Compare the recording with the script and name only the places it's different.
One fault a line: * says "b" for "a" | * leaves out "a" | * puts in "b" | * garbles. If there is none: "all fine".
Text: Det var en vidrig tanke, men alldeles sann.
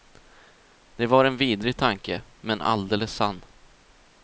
all fine